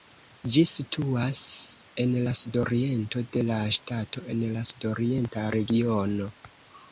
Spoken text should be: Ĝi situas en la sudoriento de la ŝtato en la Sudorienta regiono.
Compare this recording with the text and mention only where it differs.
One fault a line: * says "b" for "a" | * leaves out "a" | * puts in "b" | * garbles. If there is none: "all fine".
all fine